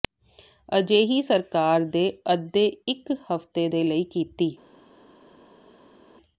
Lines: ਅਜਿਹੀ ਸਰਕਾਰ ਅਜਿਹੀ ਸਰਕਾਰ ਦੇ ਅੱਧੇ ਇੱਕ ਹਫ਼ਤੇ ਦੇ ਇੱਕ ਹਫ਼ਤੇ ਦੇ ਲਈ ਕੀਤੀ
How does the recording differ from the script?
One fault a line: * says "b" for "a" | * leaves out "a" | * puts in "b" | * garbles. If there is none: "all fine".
* leaves out "ਅਜਿਹੀ ਸਰਕਾਰ"
* leaves out "ਇੱਕ ਹਫ਼ਤੇ ਦੇ"